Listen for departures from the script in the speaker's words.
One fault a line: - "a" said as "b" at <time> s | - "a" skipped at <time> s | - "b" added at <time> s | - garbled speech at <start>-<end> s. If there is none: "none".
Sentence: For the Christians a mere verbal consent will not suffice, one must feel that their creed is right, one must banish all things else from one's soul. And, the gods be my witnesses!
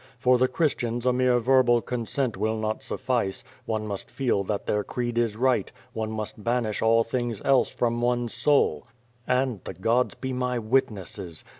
none